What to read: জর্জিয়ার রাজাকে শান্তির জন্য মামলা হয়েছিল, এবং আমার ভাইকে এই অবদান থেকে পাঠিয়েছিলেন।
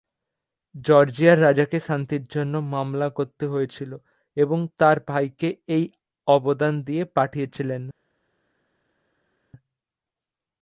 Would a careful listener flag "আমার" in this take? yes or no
yes